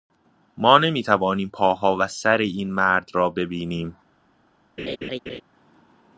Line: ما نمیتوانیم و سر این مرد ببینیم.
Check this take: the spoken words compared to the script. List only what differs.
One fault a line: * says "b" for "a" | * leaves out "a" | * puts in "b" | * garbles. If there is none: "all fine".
* puts in "پاها"
* puts in "را"